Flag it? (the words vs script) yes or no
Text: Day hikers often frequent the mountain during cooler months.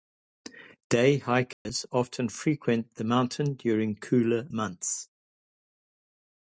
no